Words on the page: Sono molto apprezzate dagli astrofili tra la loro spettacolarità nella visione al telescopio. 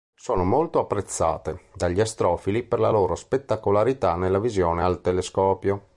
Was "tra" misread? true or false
true